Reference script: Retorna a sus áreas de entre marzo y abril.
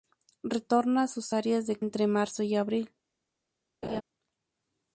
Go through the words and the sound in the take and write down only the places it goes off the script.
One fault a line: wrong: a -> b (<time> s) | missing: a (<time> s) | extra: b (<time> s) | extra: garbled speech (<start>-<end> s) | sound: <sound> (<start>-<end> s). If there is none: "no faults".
sound: laugh (3.8-4.0 s)